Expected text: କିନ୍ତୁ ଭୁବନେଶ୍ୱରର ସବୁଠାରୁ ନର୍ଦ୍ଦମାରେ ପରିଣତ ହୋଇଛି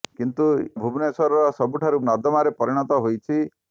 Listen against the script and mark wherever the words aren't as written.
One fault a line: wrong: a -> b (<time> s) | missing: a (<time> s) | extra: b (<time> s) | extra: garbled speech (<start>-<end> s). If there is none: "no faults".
no faults